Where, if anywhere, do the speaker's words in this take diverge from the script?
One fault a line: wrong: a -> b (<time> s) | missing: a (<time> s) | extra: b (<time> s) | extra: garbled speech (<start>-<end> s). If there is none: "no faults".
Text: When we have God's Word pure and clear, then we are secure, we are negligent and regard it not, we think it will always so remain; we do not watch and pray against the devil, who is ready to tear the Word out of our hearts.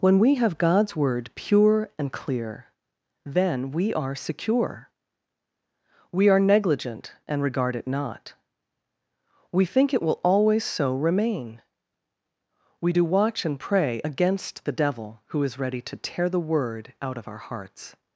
missing: not (13.0 s)